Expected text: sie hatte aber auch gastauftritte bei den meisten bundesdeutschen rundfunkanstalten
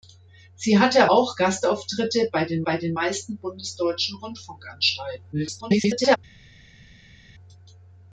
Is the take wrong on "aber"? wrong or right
wrong